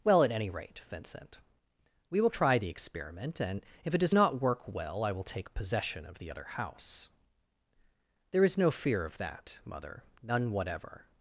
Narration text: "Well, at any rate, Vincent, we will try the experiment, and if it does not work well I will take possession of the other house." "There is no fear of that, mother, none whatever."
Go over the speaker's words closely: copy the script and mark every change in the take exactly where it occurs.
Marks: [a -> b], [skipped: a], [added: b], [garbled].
"Well, at any rate, Vincent, we will try the experiment, and if it does not work well I will take possession of the other house." "There is no fear of that, mother, none whatever."